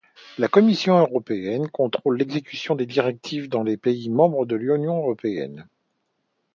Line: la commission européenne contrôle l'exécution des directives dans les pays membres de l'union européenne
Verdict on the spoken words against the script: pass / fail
pass